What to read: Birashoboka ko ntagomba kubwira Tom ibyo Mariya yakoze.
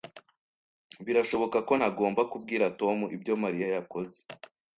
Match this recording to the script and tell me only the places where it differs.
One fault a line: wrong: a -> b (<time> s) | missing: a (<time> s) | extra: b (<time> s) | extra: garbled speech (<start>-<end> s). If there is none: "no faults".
no faults